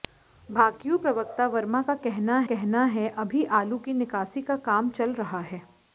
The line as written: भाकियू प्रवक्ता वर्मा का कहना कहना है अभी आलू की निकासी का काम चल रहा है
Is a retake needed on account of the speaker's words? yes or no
no